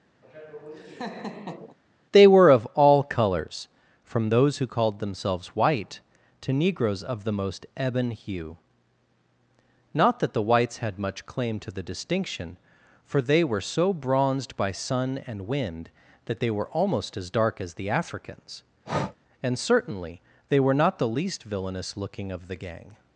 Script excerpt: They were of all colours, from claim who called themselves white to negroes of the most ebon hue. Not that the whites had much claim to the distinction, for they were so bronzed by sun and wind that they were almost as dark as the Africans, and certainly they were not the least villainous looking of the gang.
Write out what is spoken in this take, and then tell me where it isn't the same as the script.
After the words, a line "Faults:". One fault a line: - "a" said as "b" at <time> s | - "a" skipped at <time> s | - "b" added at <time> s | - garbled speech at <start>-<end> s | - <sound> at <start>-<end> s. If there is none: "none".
They were of all colours, from those who called themselves white to negroes of the most ebon hue. Not that the whites had much claim to the distinction, for they were so bronzed by sun and wind that they were almost as dark as the Africans, and certainly they were not the least villainous looking of the gang.
Faults:
- laugh at 0.2-1.8 s
- "claim" said as "those" at 4.3 s
- breath at 18.8-19.2 s